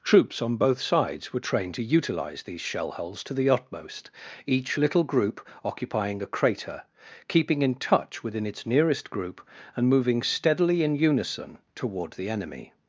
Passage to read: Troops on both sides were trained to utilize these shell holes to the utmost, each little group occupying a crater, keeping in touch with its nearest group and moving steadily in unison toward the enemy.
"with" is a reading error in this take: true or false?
true